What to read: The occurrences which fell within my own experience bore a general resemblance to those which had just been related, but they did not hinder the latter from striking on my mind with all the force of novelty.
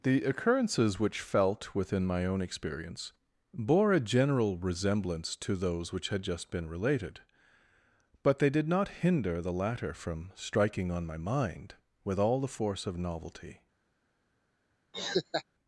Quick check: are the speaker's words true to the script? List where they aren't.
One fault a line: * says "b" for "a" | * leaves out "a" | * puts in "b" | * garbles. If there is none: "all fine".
* says "felt" for "fell"